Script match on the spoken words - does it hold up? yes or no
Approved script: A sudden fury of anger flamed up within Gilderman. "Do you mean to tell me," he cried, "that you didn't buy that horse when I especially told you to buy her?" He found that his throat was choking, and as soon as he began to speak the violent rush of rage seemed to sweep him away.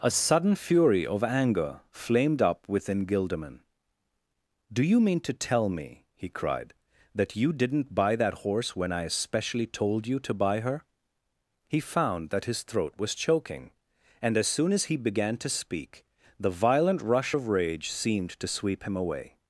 yes